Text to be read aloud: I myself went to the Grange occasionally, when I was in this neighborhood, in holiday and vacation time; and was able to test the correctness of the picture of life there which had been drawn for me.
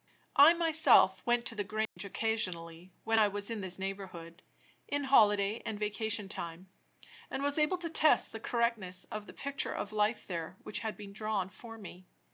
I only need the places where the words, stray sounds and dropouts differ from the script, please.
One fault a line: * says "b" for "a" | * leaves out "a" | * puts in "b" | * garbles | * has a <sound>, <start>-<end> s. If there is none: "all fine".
* has a dropout, 1.9-2.0 s